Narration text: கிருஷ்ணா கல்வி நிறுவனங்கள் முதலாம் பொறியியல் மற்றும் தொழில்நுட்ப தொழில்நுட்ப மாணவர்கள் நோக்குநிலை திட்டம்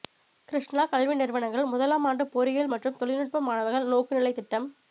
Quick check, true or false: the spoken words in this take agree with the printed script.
false